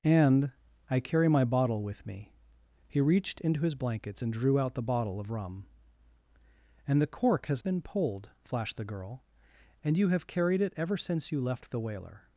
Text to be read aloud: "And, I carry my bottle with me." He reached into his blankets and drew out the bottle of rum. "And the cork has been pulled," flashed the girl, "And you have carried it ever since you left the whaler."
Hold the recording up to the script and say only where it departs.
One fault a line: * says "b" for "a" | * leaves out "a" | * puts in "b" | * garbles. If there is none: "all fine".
all fine